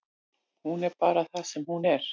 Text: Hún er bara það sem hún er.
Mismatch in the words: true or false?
false